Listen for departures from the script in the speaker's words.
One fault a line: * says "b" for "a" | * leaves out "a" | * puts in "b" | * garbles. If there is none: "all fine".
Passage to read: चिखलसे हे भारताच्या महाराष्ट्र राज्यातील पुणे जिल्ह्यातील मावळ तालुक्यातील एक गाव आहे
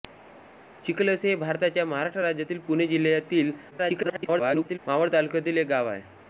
* garbles